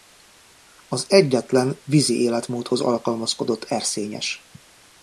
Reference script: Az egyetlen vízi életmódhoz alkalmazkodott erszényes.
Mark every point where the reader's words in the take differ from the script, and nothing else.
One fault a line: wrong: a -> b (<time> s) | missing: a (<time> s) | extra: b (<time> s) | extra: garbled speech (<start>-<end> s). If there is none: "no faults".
no faults